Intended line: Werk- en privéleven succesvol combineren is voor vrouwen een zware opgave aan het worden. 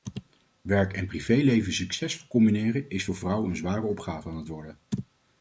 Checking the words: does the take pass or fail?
pass